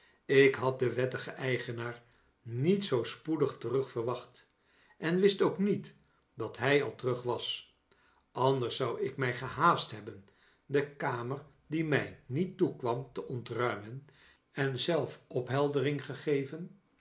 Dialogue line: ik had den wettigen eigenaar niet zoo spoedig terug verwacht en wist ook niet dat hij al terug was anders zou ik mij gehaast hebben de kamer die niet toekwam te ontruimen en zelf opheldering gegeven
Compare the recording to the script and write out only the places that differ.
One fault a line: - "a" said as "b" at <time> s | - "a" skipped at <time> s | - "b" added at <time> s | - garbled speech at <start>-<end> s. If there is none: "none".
- "mij" added at 11.9 s